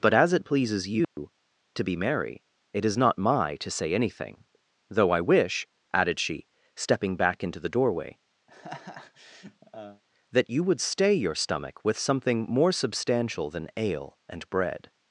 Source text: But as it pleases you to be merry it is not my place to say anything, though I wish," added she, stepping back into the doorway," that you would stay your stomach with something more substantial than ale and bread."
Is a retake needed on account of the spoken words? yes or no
yes